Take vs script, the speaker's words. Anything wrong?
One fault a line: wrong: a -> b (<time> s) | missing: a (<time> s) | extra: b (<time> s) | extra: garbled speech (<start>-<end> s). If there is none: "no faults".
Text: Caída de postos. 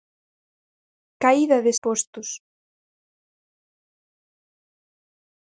no faults